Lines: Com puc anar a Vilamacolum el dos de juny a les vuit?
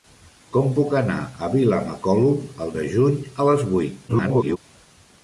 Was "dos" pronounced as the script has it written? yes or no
no